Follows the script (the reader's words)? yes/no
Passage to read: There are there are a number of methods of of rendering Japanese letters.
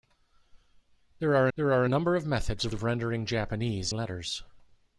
yes